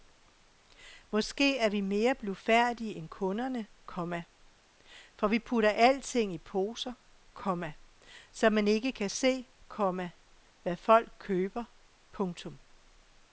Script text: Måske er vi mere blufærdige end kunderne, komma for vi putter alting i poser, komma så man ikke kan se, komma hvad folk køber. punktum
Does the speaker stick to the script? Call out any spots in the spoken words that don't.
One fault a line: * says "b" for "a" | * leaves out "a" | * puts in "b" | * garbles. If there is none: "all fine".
all fine